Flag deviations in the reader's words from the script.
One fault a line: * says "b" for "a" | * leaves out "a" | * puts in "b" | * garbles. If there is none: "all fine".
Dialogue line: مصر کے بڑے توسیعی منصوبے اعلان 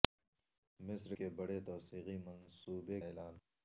all fine